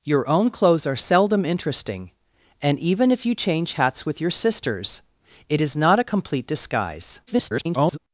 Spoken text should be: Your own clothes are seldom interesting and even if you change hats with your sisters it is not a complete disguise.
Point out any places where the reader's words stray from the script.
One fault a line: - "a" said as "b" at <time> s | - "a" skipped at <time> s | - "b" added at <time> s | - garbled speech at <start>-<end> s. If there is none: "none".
- garbled speech at 7.3-8.0 s